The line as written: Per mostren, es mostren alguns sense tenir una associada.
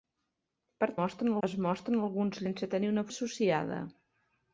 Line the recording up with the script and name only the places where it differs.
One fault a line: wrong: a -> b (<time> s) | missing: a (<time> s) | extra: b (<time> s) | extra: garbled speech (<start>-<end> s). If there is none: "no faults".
no faults